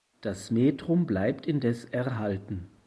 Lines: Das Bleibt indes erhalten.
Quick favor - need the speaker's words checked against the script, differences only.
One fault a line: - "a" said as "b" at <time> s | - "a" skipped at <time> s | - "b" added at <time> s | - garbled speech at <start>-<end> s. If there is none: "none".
- "Metrum" added at 0.5 s